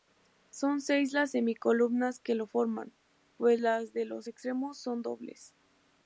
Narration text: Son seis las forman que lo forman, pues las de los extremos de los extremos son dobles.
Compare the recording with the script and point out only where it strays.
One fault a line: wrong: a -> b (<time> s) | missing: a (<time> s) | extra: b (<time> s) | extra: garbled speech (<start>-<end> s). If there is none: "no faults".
wrong: forman -> semicolumnas (1.3 s)
missing: de los extremos (4.8 s)